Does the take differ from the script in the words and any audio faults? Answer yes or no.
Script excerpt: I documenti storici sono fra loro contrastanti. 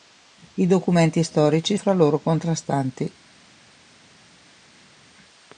yes